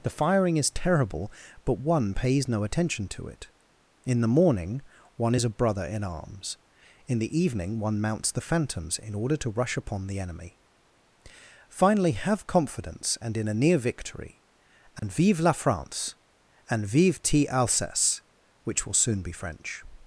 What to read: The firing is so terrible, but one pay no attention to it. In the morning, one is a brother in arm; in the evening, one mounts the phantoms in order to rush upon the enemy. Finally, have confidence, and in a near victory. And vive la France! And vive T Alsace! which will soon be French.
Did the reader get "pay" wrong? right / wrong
wrong